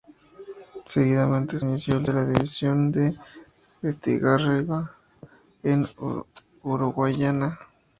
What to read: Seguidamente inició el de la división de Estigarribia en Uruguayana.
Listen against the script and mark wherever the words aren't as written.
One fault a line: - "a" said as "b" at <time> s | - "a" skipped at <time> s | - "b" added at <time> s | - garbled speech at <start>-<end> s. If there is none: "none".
none